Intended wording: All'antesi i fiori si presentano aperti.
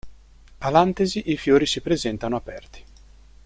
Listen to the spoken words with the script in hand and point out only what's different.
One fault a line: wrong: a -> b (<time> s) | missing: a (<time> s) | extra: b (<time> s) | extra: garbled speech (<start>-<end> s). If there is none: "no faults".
no faults